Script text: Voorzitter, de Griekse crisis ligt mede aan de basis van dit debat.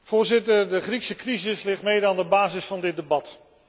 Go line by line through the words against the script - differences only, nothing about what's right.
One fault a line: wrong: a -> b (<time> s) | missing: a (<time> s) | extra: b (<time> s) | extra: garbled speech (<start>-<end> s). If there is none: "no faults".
no faults